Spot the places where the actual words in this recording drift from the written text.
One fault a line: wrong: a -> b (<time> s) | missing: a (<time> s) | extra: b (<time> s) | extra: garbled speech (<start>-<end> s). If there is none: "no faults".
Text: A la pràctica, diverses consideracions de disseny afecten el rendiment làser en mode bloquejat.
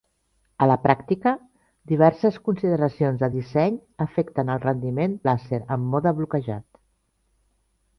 no faults